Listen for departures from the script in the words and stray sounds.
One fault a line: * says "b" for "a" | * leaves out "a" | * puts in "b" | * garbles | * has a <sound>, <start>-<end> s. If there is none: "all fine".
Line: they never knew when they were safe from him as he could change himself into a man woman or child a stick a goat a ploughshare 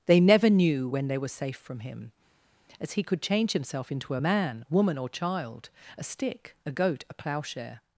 all fine